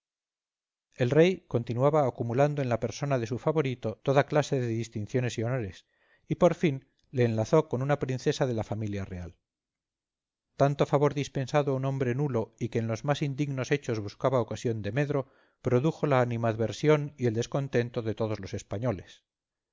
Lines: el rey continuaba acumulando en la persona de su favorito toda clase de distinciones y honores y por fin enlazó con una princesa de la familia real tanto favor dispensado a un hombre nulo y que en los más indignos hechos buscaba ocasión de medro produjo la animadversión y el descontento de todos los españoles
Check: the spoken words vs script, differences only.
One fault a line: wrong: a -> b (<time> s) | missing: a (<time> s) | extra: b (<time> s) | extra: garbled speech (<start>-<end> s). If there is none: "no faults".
extra: le (7.1 s)